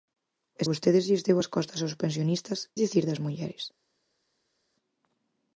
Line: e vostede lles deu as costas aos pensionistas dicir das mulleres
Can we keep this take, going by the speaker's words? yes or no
yes